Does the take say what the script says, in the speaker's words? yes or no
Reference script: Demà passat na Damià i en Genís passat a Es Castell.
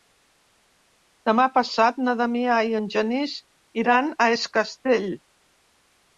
no